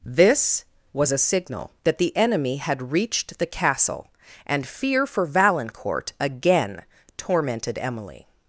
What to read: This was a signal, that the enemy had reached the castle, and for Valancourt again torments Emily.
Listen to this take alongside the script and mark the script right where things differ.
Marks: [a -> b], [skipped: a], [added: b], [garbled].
This was a signal, that the enemy had reached the castle, and [added: fear] for Valancourt again [torments -> tormented] Emily.